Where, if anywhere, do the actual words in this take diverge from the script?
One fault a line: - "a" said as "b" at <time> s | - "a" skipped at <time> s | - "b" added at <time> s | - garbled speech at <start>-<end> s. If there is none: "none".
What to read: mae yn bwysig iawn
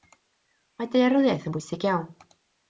- "daearyddiaeth" added at 0.9 s